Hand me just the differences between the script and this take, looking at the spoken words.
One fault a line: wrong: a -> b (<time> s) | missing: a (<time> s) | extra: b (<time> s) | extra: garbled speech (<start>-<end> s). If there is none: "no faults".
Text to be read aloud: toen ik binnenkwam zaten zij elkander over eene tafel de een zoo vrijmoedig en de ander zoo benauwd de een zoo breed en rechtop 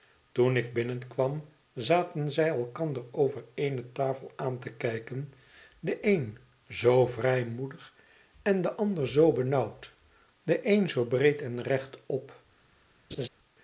extra: aan te kijken (4.3 s)